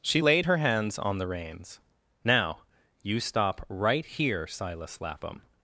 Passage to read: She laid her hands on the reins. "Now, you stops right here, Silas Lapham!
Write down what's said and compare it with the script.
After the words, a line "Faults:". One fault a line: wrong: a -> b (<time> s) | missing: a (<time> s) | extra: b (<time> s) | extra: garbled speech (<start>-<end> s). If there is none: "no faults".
She laid her hands on the reins. "Now, you stop right here, Silas Lapham!
Faults:
wrong: stops -> stop (3.2 s)